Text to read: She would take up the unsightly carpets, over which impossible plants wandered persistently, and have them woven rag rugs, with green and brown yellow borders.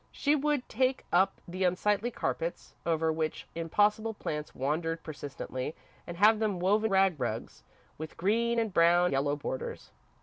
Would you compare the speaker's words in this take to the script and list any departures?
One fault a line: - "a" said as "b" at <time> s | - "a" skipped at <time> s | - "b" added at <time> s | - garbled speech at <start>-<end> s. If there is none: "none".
none